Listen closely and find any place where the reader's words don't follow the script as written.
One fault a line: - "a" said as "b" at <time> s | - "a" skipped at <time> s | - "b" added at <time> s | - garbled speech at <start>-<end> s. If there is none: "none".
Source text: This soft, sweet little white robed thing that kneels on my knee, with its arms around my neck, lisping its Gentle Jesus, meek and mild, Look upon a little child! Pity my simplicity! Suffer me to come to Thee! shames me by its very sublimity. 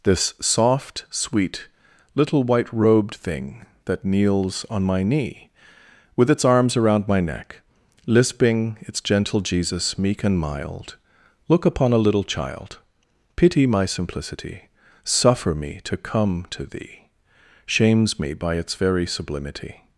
none